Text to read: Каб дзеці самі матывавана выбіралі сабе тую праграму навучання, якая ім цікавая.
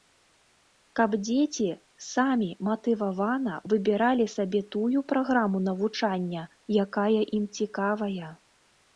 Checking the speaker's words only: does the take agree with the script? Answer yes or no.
yes